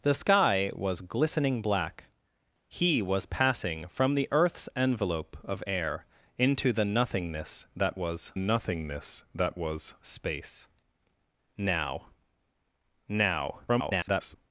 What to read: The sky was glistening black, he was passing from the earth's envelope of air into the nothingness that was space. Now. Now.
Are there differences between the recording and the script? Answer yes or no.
yes